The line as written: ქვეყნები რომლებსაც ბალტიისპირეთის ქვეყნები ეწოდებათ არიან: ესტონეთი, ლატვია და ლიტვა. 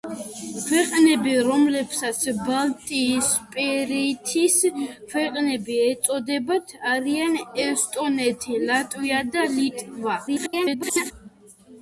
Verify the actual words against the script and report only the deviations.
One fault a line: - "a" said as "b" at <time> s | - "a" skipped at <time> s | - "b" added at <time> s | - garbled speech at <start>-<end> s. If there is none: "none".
- garbled speech at 10.3-11.1 s